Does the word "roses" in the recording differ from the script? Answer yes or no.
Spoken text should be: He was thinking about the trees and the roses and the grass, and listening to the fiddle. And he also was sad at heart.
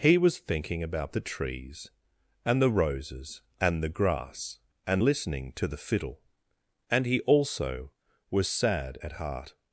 no